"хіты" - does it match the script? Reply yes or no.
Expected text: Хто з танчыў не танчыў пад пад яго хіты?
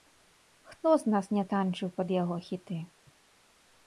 yes